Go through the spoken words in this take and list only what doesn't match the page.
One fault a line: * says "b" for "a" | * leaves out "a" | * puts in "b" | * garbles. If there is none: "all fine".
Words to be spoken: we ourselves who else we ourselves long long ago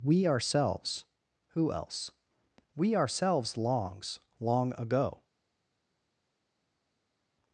* says "longs" for "long"